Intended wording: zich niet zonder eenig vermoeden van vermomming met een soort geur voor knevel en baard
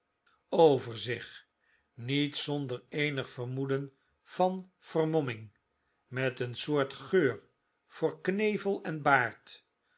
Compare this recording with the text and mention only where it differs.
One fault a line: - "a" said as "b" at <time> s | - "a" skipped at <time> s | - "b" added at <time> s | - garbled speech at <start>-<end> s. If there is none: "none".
none